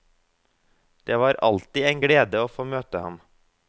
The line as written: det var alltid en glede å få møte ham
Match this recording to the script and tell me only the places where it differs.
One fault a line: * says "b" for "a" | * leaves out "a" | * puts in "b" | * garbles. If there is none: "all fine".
all fine